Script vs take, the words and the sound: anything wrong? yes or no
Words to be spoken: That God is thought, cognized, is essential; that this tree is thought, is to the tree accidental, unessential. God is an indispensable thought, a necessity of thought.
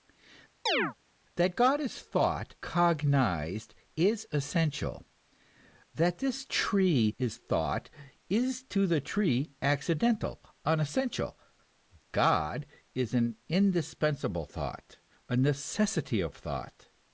yes